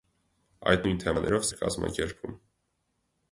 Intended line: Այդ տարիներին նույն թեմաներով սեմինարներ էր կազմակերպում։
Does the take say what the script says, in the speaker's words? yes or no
no